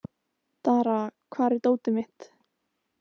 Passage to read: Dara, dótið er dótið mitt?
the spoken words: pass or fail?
fail